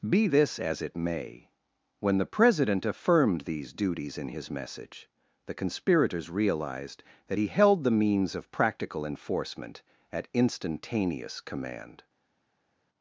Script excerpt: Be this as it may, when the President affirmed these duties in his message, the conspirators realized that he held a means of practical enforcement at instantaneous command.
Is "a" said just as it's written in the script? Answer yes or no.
no